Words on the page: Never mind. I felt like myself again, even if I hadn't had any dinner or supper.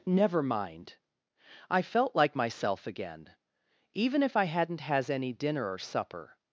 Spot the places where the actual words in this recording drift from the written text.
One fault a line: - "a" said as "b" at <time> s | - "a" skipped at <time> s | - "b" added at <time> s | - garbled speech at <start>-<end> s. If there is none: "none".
- "had" said as "has" at 4.8 s